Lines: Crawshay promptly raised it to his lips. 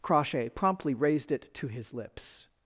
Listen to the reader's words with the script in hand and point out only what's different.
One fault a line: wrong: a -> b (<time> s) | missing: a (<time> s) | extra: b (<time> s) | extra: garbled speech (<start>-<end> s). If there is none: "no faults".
no faults